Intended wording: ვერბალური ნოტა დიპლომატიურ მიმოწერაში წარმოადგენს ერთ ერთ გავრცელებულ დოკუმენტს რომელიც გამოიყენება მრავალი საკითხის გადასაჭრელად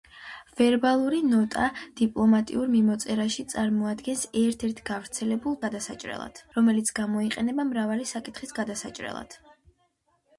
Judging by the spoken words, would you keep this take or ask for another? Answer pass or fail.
fail